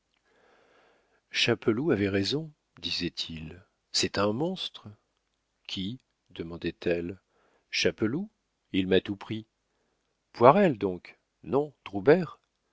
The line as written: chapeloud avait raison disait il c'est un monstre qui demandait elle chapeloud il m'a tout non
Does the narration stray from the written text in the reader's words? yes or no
yes